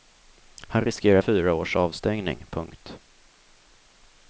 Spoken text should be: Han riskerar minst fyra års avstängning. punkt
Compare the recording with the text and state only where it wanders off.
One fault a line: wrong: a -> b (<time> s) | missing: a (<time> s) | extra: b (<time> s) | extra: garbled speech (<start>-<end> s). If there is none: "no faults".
missing: minst (1.2 s)